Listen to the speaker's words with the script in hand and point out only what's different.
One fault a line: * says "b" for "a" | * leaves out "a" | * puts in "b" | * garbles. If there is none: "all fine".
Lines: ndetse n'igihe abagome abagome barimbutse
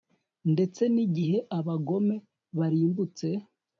* leaves out "abagome"